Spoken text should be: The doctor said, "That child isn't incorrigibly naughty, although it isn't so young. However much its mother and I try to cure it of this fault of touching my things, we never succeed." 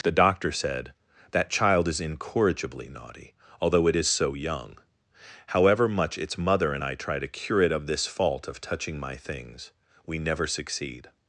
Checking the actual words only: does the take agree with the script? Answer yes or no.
no